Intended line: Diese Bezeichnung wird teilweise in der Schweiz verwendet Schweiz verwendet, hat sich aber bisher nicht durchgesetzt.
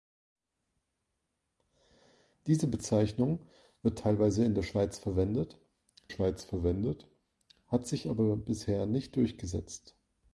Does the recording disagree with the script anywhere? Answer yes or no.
no